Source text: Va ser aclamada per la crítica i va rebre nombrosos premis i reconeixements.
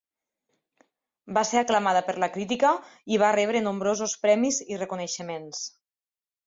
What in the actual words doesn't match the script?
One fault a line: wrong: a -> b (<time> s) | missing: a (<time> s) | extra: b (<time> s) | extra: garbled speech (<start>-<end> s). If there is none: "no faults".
no faults